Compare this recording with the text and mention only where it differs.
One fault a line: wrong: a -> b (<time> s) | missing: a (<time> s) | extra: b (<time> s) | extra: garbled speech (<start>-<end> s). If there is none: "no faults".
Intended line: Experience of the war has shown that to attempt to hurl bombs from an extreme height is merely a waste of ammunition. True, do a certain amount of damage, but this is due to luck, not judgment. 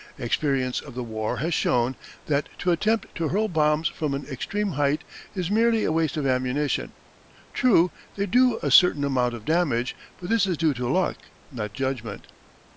extra: they (8.1 s)